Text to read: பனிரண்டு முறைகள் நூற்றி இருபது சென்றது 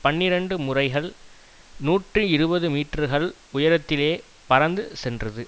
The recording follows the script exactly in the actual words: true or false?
false